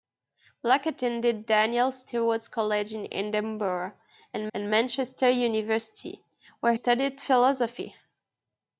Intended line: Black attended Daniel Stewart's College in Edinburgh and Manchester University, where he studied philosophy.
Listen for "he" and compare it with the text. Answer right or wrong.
wrong